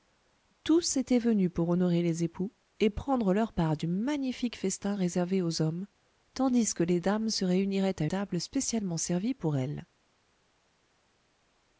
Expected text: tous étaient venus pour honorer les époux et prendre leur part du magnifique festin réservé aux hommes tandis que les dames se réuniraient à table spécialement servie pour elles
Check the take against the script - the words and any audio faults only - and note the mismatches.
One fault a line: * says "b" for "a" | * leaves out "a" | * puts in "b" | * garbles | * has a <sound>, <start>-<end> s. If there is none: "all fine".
all fine